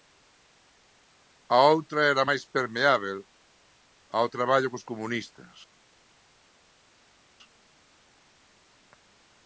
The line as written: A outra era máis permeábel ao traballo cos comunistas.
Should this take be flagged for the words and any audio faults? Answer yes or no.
no